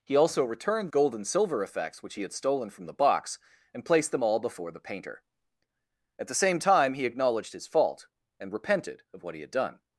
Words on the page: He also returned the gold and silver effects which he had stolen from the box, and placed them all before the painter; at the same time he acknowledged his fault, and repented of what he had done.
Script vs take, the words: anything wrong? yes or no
yes